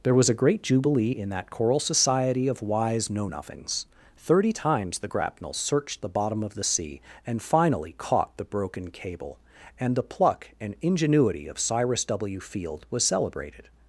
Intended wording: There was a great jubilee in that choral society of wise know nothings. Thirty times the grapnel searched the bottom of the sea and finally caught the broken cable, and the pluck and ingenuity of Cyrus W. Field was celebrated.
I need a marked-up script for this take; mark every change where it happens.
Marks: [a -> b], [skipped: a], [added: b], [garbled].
There was a great jubilee in that choral society of wise know nothings. Thirty times the grapnel searched the bottom of the sea and finally caught the broken cable, and the pluck and ingenuity of Cyrus W. Field was celebrated.